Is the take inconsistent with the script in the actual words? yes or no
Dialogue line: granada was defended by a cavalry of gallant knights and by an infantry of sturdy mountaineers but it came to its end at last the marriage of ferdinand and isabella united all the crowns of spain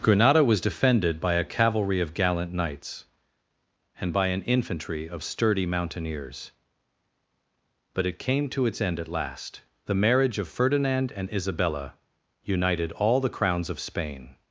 no